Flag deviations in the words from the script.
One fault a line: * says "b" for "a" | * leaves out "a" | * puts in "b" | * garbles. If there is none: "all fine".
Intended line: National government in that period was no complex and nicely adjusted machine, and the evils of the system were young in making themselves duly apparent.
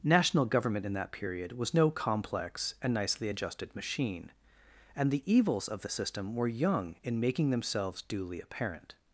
all fine